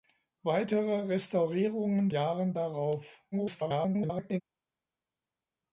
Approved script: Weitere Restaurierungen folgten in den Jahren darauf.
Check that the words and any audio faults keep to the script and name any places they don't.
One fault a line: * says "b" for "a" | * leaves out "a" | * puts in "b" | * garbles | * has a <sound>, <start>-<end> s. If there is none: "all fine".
* leaves out "folgten in den"
* garbles